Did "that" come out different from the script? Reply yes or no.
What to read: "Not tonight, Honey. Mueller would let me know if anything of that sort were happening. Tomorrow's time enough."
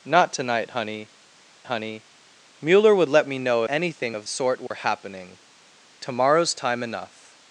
yes